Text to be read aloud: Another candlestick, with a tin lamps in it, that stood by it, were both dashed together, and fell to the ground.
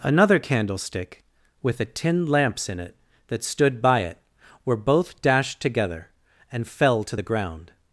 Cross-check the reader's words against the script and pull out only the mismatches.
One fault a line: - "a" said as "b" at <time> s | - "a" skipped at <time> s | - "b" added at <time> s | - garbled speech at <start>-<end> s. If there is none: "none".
none